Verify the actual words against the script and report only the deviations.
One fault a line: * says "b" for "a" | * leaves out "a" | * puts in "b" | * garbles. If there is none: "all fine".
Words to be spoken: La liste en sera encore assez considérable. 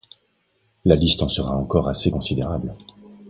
all fine